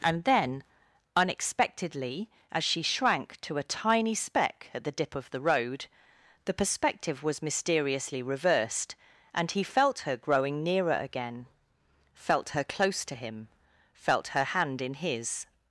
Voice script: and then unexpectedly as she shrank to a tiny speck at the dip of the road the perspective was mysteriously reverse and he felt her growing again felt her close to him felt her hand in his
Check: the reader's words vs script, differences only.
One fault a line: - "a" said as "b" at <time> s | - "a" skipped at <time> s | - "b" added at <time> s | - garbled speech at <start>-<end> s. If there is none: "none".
- "reverse" said as "reversed" at 8.2 s
- "nearer" added at 10.6 s